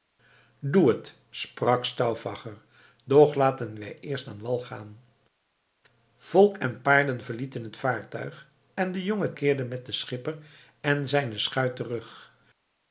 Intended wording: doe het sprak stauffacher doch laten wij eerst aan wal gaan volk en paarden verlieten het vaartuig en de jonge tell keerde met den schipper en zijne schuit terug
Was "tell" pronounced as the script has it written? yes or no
no